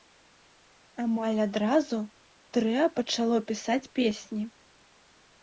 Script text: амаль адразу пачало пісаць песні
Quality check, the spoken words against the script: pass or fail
fail